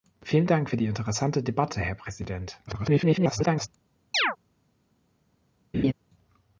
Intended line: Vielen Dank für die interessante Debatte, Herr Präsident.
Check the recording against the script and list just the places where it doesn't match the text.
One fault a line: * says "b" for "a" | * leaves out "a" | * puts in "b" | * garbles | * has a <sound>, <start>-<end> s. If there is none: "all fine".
* garbles
* has a chirp, 4.1-4.4 s
* has a laugh, 5.7-5.9 s